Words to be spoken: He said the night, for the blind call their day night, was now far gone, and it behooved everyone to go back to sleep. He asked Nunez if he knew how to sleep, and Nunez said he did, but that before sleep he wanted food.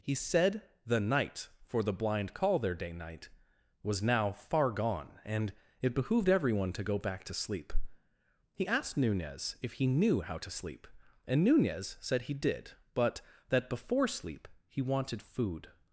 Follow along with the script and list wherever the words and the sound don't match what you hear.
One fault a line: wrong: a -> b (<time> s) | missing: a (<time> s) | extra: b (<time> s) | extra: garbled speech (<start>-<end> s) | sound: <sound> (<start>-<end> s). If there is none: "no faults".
no faults